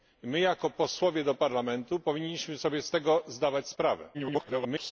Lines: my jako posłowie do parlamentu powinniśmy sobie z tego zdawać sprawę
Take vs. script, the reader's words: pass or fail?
fail